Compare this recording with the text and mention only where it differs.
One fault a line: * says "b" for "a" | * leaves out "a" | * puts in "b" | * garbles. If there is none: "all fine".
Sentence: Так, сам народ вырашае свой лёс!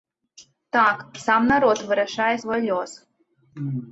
all fine